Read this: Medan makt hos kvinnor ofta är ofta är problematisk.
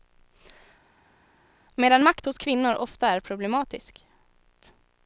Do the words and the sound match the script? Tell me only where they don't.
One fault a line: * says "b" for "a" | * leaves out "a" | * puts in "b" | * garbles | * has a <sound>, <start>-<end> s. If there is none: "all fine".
* leaves out "ofta är"